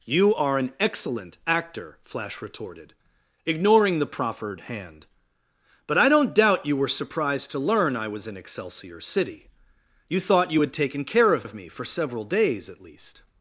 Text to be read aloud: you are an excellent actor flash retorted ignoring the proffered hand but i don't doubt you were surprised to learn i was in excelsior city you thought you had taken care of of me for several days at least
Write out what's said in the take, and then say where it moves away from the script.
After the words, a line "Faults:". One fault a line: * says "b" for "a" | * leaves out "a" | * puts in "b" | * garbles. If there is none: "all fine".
you are an excellent actor flash retorted ignoring the proffered hand but i don't doubt you were surprised to learn i was in excelsior city you thought you had taken care of of me for several days at least
Faults:
all fine